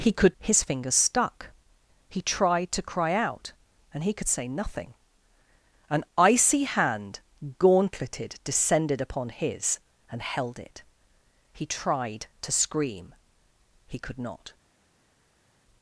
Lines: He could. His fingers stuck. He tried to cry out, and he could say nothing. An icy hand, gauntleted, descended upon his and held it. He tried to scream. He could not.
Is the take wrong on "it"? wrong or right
right